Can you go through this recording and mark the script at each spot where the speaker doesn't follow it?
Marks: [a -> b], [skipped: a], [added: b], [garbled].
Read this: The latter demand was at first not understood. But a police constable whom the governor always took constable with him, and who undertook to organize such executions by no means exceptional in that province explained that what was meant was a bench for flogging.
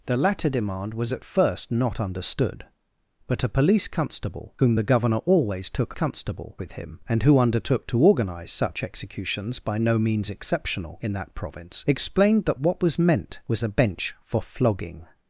The latter demand was at first not understood. But a police constable whom the governor always took constable with him, and who undertook to organize such executions by no means exceptional in that province explained that what was meant was a bench for flogging.